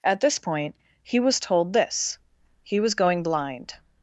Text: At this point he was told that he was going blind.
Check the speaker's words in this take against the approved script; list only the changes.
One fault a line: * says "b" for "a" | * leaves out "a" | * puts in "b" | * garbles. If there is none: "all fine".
* says "this" for "that"